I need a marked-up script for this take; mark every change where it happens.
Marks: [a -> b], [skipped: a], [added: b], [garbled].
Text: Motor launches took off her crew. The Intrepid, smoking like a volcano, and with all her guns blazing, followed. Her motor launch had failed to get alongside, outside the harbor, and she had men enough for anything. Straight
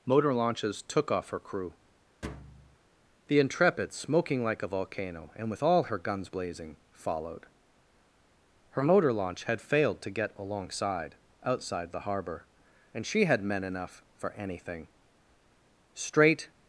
Motor launches took off her crew. The Intrepid, smoking like a volcano, and with all her guns blazing, followed. Her motor launch had failed to get alongside, outside the harbor, and she had men enough for anything. Straight